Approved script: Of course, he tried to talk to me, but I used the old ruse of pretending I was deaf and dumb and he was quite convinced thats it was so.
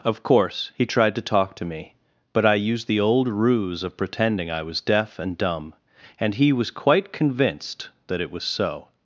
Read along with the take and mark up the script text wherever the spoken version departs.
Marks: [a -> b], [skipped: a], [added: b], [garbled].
Of course, he tried to talk to me, but I used the old ruse of pretending I was deaf and dumb and he was quite convinced [thats -> that] it was so.